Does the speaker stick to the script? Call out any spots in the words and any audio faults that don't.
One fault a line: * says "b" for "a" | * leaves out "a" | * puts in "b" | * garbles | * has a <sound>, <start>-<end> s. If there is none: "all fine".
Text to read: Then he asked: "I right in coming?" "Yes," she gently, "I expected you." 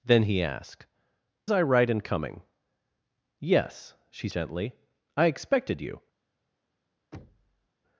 * has a thud, 7.1-7.7 s